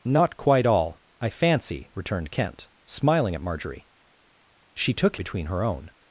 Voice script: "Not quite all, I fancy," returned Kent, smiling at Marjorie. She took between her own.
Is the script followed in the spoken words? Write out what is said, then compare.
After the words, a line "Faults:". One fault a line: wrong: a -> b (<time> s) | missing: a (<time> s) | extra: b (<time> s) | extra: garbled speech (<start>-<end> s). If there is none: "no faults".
"Not quite all, I fancy," returned Kent, smiling at Marjorie. She took between her own.
Faults:
no faults